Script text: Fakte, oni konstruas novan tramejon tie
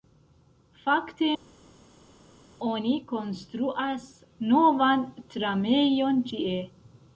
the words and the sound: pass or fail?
pass